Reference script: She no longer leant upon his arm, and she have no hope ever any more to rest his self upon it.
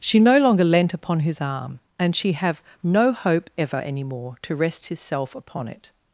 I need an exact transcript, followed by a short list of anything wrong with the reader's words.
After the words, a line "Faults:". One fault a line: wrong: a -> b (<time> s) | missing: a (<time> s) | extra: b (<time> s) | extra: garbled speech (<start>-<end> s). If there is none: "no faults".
She no longer leant upon his arm, and she have no hope ever any more to rest his self upon it.
Faults:
no faults